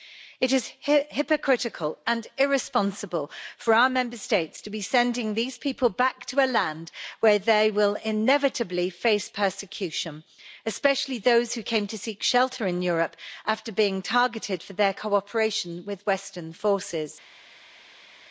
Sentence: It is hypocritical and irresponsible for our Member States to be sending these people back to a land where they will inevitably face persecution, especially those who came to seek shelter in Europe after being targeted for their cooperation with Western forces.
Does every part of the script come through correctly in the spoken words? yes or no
yes